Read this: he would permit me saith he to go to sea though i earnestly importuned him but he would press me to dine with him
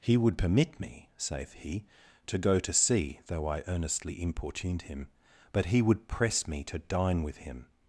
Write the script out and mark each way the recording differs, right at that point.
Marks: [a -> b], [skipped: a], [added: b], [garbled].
he would permit me saith he to go to sea though i earnestly importuned him but he would press me to dine with him